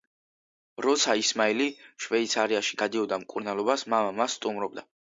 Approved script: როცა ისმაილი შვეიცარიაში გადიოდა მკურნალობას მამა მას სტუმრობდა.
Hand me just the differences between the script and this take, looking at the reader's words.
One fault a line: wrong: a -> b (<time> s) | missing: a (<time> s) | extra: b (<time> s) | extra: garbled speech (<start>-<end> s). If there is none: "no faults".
no faults